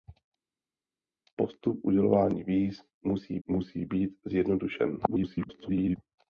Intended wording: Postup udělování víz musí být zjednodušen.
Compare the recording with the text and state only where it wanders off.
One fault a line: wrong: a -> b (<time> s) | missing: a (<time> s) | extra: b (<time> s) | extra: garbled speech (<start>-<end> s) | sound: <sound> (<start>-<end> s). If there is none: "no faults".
extra: musí (3.5 s)
extra: garbled speech (5.1-6.0 s)